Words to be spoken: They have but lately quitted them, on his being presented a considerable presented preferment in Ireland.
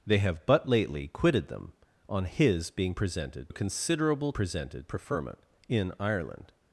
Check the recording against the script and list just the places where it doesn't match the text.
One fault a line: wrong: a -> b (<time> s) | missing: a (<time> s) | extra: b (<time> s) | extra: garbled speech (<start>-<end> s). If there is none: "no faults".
no faults